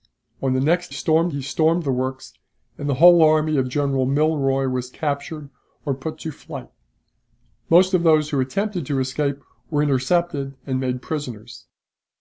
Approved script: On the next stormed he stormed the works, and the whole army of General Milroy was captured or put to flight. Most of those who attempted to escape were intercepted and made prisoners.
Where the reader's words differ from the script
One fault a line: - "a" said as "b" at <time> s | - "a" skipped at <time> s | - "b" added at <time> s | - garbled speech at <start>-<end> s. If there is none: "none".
none